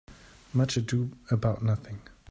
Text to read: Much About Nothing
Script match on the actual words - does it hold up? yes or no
no